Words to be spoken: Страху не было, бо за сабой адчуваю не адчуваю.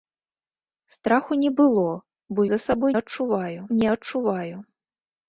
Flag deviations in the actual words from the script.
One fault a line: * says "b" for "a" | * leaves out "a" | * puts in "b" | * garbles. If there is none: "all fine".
all fine